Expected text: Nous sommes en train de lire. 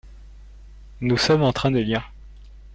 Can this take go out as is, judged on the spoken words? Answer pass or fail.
pass